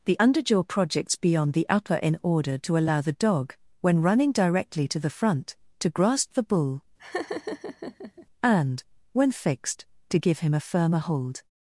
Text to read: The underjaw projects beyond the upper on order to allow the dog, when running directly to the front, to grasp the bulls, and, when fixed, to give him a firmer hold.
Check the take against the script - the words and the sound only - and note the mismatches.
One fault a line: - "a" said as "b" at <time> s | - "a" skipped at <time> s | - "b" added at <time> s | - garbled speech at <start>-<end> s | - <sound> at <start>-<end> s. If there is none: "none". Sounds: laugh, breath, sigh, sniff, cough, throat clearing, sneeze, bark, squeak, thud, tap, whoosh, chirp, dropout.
- "on" said as "in" at 2.0 s
- "bulls" said as "bull" at 6.4 s
- laugh at 7.0-8.3 s